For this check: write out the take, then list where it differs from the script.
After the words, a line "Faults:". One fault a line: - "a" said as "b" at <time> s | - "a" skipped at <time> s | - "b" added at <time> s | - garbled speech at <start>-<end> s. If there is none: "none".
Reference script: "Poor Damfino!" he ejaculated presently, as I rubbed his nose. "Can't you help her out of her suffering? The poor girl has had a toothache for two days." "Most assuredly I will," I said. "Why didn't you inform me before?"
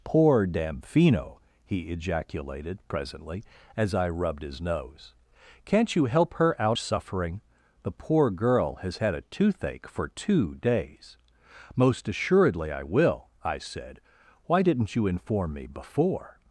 "Poor Damfino!" he ejaculated presently, as I rubbed his nose. "Can't you help her out suffering? The poor girl has had a toothache for two days." "Most assuredly I will," I said. "Why didn't you inform me before?"
Faults:
- "of her" skipped at 6.8 s